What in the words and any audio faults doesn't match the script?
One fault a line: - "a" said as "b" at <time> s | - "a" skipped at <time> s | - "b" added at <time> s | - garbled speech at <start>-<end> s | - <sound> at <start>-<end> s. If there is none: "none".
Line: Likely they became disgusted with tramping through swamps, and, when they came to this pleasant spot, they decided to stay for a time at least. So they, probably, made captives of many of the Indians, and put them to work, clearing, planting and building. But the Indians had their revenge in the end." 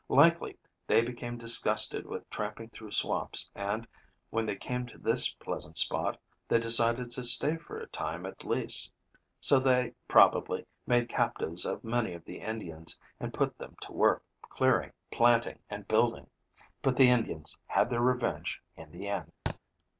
- thud at 19.5-19.6 s